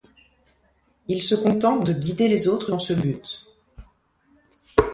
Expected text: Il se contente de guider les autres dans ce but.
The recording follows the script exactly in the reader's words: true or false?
true